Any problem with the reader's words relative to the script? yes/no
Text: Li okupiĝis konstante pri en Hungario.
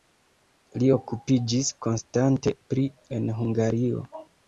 no